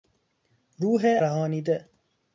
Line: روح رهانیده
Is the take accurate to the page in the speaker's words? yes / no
yes